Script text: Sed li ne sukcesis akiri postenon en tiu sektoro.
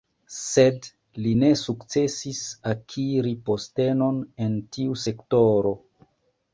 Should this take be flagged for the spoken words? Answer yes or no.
no